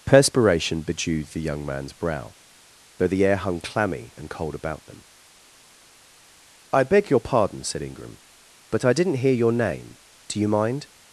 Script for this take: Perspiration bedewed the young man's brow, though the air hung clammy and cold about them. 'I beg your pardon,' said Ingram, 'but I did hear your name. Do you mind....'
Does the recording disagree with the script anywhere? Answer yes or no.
yes